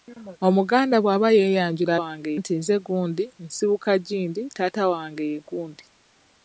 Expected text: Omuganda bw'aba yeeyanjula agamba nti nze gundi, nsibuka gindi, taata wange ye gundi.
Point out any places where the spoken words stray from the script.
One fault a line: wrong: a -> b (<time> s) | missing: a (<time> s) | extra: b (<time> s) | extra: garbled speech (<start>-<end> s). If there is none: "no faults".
wrong: agamba -> wange (2.0 s)